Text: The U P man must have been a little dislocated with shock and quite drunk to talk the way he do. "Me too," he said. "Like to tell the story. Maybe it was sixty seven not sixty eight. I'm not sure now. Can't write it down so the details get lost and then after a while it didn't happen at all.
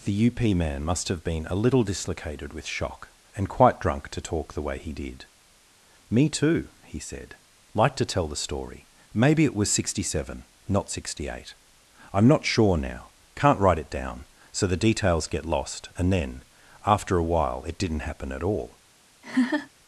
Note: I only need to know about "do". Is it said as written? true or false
false